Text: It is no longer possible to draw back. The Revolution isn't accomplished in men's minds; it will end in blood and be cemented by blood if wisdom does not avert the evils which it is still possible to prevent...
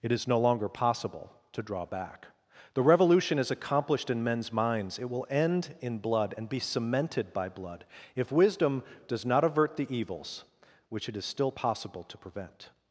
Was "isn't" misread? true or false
true